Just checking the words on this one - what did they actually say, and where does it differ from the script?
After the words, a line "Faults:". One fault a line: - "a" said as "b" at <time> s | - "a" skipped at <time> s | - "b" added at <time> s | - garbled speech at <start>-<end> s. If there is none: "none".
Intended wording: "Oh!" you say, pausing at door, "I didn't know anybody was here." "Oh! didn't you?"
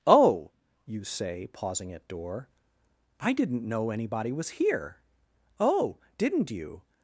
"Oh!" you say, pausing at door, "I didn't know anybody was here." "Oh! didn't you?"
Faults:
none